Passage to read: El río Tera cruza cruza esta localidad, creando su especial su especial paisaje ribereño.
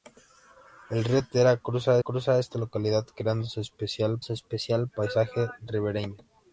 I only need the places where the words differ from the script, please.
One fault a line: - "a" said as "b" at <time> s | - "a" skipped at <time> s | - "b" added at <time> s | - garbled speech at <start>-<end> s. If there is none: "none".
none